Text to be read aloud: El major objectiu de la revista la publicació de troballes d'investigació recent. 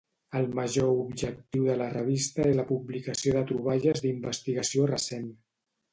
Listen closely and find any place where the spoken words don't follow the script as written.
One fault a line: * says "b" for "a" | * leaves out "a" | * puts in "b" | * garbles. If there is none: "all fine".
all fine